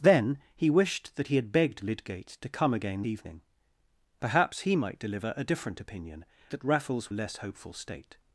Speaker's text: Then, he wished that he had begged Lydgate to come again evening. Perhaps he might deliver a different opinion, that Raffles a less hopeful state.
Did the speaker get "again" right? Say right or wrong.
right